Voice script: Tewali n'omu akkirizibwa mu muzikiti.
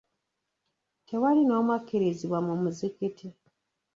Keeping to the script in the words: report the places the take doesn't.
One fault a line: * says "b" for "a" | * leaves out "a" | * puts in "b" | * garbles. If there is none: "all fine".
all fine